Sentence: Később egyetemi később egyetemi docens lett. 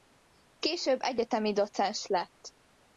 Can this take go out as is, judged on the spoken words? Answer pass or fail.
fail